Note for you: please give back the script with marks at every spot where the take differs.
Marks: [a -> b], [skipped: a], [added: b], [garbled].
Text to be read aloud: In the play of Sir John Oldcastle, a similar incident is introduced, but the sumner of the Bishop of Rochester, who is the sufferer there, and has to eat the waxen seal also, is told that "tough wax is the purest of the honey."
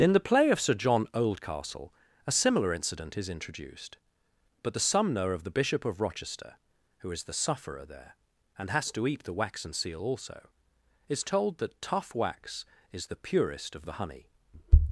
In the play of Sir John Oldcastle, a similar incident is introduced, but the sumner of the Bishop of Rochester, who is the sufferer there, and has to eat the waxen seal also, is told that "tough wax is the purest of the honey."